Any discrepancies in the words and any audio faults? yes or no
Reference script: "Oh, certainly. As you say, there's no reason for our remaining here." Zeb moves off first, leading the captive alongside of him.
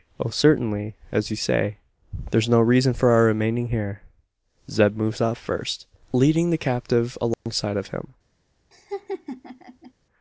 yes